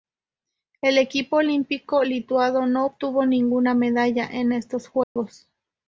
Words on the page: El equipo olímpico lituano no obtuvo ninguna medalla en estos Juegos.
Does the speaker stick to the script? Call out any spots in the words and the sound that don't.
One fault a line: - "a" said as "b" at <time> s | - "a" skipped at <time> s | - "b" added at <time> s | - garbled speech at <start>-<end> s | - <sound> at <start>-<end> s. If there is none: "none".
- dropout at 5.0-5.2 s